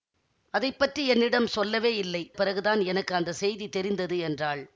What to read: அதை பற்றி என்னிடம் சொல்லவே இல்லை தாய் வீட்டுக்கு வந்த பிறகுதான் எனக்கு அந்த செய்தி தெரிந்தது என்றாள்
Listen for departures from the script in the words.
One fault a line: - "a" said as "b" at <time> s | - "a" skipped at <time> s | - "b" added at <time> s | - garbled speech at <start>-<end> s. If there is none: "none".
- "தாய் வீட்டுக்கு வந்த" skipped at 2.2 s